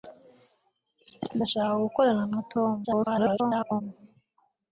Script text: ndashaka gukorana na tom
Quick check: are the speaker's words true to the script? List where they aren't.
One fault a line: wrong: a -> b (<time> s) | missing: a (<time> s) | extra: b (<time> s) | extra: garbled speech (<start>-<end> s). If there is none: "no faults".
extra: garbled speech (2.8-3.8 s)